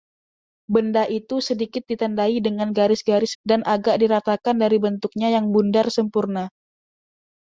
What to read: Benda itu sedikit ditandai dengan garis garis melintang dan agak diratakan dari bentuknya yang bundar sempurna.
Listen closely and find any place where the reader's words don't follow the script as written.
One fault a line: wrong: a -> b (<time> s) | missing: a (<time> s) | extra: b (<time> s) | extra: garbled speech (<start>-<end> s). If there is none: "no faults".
missing: melintang (3.4 s)